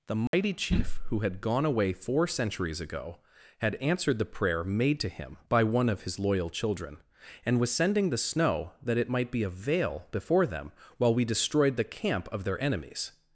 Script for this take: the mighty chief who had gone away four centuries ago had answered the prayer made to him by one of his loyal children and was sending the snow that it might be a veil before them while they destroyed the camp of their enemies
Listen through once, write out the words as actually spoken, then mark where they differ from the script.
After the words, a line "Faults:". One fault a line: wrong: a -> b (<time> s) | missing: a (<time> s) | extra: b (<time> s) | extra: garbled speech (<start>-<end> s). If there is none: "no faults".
the mighty chief who had gone away four centuries ago had answered the prayer made to him by one of his loyal children and was sending the snow that it might be a veil before them while we destroyed the camp of their enemies
Faults:
wrong: they -> we (11.1 s)